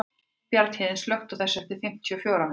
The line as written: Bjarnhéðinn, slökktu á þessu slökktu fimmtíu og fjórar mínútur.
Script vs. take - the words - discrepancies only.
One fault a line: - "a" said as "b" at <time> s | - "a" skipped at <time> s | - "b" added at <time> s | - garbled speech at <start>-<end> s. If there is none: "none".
- "slökktu" said as "eftir" at 1.6 s